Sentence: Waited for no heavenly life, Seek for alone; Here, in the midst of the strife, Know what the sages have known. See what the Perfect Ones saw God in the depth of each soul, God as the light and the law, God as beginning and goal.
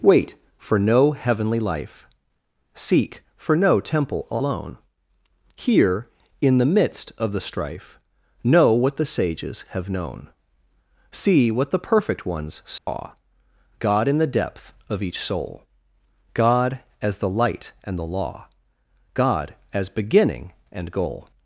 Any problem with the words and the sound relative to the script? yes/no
yes